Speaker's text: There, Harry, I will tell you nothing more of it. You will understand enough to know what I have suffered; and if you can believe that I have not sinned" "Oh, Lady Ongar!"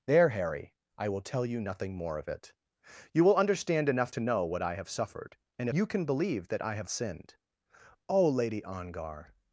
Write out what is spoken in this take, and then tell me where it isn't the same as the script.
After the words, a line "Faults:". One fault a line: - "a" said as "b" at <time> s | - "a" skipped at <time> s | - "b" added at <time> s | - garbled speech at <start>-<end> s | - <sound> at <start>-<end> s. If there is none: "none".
There, Harry, I will tell you nothing more of it. You will understand enough to know what I have suffered; and you can believe that I have sinned" "Oh, Lady Ongar!"
Faults:
- "if" skipped at 5.7 s
- "not" skipped at 6.9 s